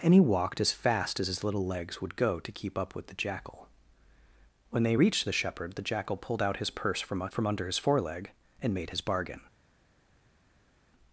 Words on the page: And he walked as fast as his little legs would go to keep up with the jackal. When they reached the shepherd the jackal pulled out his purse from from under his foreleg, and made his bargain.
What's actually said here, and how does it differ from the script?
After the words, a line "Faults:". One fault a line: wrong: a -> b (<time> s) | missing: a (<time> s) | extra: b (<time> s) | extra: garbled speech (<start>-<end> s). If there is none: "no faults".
And he walked as fast as his little legs would go to keep up with the jackal. When they reached the shepherd the jackal pulled out his purse from from under his foreleg, and made his bargain.
Faults:
no faults